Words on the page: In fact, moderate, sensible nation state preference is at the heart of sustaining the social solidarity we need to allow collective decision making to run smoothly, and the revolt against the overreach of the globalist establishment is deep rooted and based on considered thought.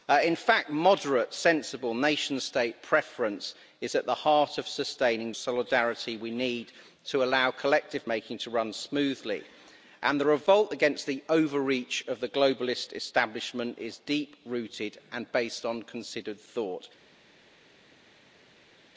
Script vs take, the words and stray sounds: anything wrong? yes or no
yes